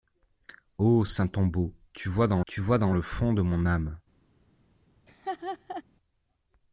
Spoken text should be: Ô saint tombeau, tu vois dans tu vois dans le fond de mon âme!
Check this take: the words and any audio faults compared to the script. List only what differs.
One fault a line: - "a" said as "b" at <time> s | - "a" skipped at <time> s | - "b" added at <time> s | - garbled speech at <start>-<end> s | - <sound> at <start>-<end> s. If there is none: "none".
- laugh at 5.1-5.8 s